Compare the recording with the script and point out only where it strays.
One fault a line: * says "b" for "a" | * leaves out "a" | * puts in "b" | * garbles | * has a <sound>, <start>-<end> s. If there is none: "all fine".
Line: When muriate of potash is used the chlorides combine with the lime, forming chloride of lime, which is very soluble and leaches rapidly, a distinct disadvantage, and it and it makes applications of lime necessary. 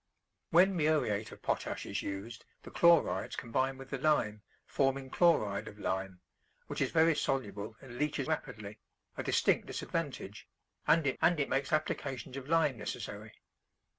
all fine